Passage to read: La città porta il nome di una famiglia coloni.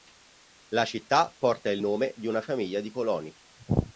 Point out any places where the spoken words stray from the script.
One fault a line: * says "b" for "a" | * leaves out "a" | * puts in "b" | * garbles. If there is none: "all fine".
* puts in "di"